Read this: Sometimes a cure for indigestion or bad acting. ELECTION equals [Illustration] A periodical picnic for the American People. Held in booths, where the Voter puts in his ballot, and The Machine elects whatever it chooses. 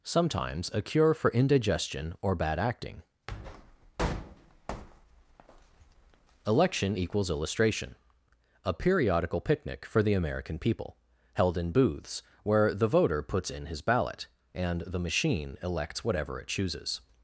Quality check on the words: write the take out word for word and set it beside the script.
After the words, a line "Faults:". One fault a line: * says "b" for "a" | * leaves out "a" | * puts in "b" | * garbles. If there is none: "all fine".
Sometimes a cure for indigestion or bad acting. ELECTION equals [Illustration] A periodical picnic for the American People. Held in booths, where the Voter puts in his ballot, and The Machine elects whatever it chooses.
Faults:
all fine